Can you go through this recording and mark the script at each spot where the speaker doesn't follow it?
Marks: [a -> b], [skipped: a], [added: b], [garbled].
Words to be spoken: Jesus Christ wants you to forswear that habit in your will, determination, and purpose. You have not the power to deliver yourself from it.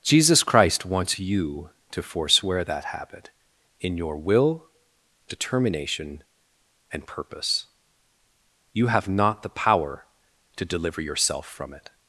Jesus Christ wants you to forswear that habit in your will, determination, and purpose. You have not the power to deliver yourself from it.